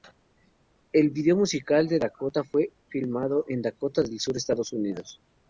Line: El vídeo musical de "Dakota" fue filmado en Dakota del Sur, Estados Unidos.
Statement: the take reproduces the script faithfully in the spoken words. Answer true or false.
true